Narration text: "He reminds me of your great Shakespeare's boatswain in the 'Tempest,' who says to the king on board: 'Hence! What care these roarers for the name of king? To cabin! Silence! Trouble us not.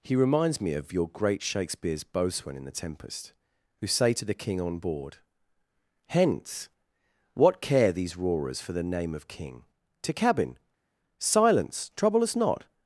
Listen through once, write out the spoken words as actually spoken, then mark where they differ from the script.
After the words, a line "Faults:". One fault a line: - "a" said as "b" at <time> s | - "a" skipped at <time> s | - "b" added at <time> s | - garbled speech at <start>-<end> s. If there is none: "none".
"He reminds me of your great Shakespeare's boatswain in the 'Tempest,' who say to the king on board: 'Hence! What care these roarers for the name of king? To cabin! Silence! Trouble us not.
Faults:
- "says" said as "say" at 3.9 s